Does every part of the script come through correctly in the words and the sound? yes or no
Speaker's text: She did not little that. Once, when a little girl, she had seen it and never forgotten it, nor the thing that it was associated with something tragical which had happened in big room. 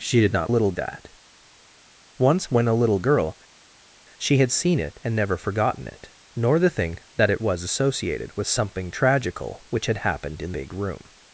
yes